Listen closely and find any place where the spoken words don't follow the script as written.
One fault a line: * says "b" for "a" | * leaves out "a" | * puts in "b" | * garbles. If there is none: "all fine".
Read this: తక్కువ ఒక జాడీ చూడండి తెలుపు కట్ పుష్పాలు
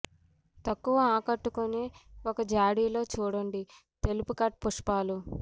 * puts in "ఆకట్టుకునే"
* puts in "లో"